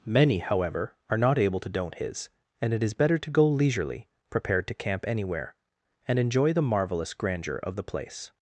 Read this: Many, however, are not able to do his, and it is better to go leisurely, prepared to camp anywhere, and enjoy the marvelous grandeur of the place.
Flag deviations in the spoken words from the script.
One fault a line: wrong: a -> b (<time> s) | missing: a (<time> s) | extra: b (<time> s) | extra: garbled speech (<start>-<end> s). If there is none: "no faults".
wrong: do -> don't (1.7 s)